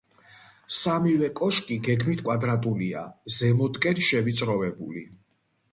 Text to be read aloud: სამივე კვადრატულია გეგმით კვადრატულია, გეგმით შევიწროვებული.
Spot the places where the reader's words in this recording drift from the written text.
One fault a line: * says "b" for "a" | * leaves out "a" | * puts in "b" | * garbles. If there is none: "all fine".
* says "კოშკი" for "კვადრატულია"
* says "ზემოთკენ" for "გეგმით"